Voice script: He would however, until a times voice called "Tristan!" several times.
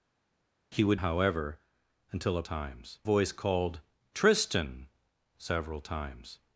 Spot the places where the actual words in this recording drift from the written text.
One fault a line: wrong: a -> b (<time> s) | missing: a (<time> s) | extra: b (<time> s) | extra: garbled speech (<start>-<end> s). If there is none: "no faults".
no faults